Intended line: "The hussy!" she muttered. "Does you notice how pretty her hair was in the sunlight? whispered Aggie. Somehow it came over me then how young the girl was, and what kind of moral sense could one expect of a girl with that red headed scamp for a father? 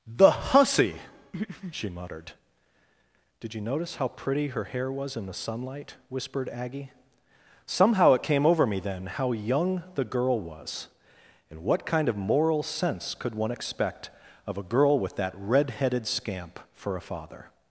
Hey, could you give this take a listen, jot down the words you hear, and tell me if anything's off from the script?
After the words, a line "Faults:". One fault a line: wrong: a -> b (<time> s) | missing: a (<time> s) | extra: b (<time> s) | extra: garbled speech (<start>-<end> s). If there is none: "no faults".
"The hussy!" she muttered. "Did you notice how pretty her hair was in the sunlight? whispered Aggie. Somehow it came over me then how young the girl was, and what kind of moral sense could one expect of a girl with that red headed scamp for a father?
Faults:
wrong: Does -> Did (3.4 s)